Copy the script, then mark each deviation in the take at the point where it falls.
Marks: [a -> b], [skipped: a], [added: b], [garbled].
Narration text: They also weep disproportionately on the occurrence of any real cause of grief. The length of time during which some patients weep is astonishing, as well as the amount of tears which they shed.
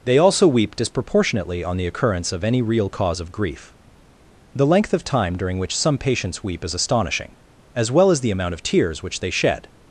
They also weep disproportionately on the occurrence of any real cause of grief. The length of time during which some patients weep is astonishing, as well as the amount of tears which they shed.